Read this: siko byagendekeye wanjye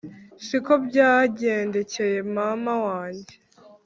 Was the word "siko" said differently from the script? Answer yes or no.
no